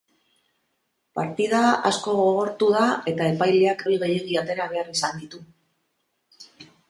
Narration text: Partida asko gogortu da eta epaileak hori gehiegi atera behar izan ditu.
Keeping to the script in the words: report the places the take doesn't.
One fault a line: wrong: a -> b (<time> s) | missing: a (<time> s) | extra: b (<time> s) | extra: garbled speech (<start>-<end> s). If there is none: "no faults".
no faults